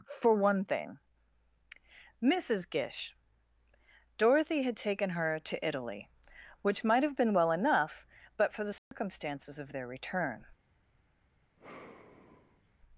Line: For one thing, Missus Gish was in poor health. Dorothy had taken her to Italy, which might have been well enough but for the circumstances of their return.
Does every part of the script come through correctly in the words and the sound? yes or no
no